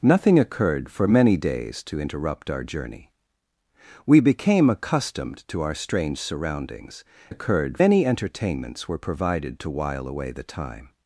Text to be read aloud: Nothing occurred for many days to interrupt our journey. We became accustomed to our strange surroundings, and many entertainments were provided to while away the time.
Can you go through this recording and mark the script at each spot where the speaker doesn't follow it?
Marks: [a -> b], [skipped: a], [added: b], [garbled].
Nothing occurred for many days to interrupt our journey. We became accustomed to our strange surroundings, [and -> occurred] many entertainments were provided to while away the time.